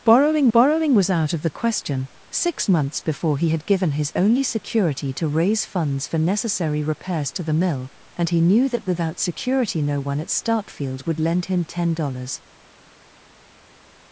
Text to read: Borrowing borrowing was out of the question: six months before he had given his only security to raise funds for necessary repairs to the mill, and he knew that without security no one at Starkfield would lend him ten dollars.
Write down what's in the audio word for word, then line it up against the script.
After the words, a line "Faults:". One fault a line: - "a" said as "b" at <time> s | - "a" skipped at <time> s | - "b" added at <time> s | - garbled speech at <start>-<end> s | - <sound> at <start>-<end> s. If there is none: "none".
Borrowing borrowing was out of the question: six months before he had given his only security to raise funds for necessary repairs to the mill, and he knew that without security no one at Starkfield would lend him ten dollars.
Faults:
none